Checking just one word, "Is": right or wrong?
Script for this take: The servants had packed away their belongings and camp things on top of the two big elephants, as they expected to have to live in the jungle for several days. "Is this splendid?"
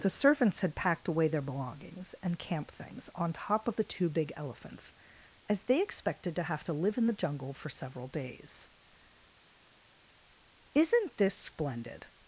wrong